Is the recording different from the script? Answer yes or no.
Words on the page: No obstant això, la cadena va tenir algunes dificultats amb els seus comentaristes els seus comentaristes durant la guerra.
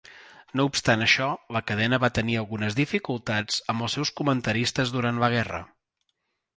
yes